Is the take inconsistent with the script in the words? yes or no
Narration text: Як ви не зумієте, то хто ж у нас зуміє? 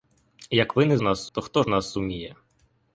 yes